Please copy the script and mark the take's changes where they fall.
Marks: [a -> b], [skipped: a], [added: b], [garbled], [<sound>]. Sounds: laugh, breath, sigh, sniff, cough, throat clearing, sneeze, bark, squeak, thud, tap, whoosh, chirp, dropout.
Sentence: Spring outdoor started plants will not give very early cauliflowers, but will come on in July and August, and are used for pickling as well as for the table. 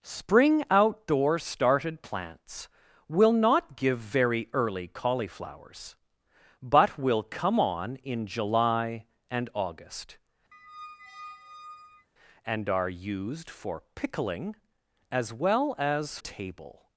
Spring outdoor started plants will not give very early cauliflowers, but will come on in July and August, [squeak] and are used for pickling as well as [skipped: for the] table.